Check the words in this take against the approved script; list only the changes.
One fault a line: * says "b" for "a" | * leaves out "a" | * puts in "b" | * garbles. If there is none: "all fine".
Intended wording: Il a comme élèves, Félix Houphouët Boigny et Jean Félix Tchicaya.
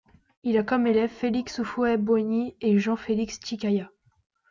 all fine